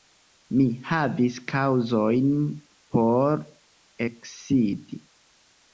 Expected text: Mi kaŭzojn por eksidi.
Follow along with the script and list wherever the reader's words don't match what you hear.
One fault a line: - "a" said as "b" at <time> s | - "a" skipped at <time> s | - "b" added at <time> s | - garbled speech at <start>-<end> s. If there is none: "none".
- "havis" added at 0.9 s